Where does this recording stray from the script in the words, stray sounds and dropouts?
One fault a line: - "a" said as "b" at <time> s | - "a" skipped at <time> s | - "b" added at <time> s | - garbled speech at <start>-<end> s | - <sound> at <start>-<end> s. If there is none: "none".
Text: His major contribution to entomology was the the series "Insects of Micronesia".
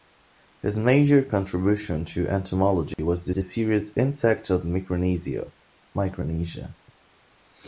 - dropout at 2.9-3.0 s